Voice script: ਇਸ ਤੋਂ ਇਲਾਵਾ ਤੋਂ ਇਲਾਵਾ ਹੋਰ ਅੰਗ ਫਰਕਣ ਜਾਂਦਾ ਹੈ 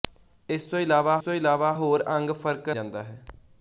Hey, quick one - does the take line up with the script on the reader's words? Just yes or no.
yes